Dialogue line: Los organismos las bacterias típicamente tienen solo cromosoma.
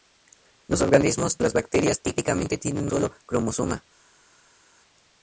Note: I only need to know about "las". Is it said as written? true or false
true